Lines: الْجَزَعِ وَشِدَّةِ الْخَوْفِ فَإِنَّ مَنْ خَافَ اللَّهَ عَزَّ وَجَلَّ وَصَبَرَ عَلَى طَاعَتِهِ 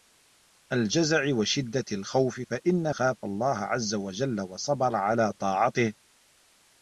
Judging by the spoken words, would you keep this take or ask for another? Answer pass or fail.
fail